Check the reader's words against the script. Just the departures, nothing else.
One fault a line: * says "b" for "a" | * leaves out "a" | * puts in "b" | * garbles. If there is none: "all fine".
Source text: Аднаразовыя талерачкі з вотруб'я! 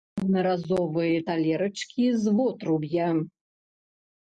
all fine